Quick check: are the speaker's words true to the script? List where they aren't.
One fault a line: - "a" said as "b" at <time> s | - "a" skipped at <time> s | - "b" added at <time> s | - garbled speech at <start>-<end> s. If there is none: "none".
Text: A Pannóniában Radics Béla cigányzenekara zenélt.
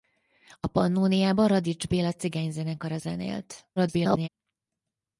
- garbled speech at 3.8-4.3 s